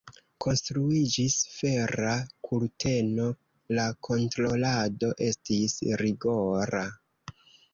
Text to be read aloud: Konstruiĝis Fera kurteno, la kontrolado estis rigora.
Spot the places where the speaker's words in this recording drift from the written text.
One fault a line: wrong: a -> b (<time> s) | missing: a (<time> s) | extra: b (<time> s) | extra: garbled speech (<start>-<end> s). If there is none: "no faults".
no faults